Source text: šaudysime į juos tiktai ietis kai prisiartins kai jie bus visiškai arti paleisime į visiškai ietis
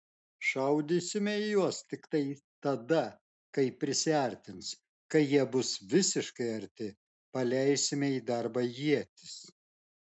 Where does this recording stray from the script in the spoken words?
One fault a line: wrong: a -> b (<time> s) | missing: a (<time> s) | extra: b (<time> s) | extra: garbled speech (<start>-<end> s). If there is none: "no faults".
wrong: ietis -> tada (2.7 s)
wrong: visiškai -> darbą (8.3 s)